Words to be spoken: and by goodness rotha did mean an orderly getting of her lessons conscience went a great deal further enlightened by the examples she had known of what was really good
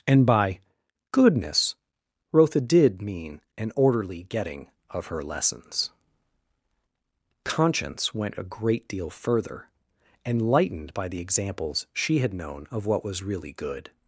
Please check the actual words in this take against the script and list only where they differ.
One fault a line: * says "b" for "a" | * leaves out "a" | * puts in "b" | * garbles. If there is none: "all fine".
all fine